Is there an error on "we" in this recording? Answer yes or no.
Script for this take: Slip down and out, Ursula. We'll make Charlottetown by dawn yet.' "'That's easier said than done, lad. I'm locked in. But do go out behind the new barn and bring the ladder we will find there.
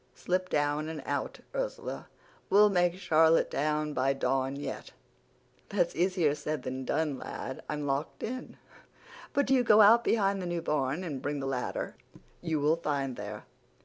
yes